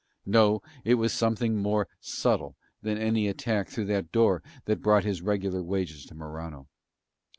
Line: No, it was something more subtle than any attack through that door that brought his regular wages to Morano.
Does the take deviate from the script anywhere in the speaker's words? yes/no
no